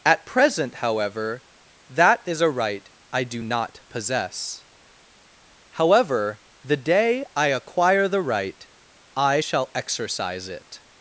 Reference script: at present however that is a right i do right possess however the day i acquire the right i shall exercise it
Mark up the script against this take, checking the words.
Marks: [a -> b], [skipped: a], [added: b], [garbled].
at present however that is a right i do [right -> not] possess however the day i acquire the right i shall exercise it